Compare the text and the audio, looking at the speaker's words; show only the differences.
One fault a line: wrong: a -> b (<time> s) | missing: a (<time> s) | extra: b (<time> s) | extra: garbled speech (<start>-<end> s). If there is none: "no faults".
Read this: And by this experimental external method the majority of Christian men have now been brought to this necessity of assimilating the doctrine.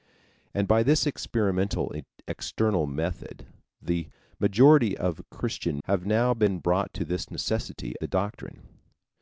missing: men (5.8 s)
missing: of assimilating (7.9 s)